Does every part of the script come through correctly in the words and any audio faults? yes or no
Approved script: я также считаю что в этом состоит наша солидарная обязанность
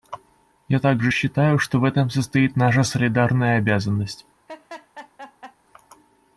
no